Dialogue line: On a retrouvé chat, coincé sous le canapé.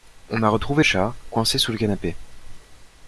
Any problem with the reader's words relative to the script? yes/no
no